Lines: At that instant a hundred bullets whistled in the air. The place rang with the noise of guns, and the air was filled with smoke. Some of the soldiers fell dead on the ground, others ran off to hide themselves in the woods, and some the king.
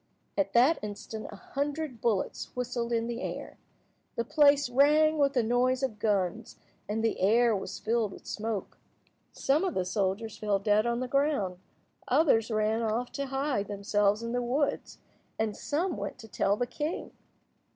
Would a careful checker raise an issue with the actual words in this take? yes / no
yes